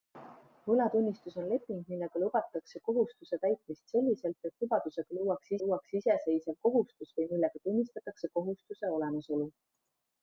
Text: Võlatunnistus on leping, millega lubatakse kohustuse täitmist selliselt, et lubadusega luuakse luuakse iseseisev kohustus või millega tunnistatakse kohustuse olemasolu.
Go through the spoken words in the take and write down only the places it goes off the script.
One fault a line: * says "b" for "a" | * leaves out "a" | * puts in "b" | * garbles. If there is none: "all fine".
all fine